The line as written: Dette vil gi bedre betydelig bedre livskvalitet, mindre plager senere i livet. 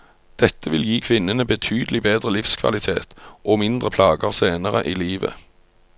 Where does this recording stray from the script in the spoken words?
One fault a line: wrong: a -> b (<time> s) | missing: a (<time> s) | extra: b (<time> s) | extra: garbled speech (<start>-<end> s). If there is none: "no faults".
wrong: bedre -> kvinnene (1.1 s)
extra: og (3.5 s)